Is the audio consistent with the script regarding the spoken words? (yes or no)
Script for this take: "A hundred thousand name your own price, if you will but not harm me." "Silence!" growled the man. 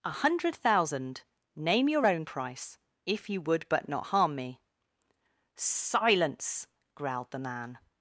no